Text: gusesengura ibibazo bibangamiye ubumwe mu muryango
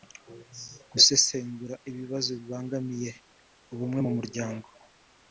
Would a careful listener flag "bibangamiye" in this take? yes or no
no